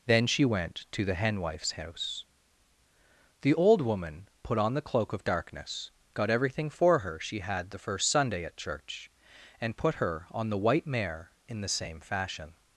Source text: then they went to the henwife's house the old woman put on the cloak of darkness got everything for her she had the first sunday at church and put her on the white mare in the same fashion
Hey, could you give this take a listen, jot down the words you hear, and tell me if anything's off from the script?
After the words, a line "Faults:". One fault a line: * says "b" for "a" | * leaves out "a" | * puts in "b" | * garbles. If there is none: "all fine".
then she went to the henwife's house the old woman put on the cloak of darkness got everything for her she had the first sunday at church and put her on the white mare in the same fashion
Faults:
* says "she" for "they"